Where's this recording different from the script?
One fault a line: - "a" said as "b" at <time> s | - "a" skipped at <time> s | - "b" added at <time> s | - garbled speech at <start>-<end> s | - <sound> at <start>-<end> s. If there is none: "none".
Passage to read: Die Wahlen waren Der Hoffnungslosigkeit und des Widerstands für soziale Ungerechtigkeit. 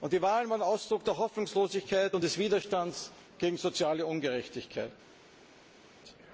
- "Ausdruck" added at 0.6 s
- "für" said as "gegen" at 3.4 s